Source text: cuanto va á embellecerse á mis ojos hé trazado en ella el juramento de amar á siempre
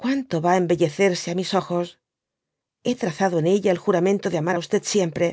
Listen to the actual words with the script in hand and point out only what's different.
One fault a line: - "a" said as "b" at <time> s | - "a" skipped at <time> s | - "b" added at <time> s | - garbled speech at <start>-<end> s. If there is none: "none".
none